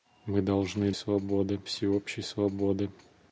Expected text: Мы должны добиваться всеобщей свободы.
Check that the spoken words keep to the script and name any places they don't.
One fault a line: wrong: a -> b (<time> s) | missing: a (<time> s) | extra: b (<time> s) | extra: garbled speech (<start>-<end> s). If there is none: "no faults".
wrong: добиваться -> свободы (0.9 s)